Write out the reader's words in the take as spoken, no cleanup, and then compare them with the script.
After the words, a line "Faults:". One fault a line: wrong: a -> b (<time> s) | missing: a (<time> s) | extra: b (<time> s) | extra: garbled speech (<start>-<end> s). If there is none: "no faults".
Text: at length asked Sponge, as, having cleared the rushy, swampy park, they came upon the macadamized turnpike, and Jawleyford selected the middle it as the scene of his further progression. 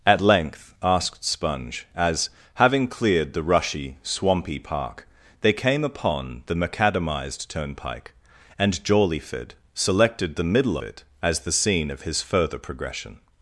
at length asked Sponge, as, having cleared the rushy, swampy park, they came upon the macadamized turnpike, and Jawleyford selected the middle it as the scene of his further progression.
Faults:
no faults